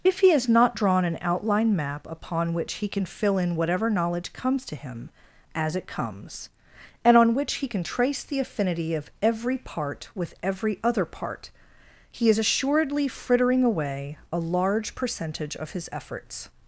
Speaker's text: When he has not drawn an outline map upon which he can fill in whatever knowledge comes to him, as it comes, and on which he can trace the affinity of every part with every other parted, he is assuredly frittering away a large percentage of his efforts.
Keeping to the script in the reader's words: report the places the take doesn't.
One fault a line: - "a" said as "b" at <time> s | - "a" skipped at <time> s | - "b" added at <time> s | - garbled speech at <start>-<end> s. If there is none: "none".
- "When" said as "If" at 0.0 s
- "parted" said as "part" at 11.1 s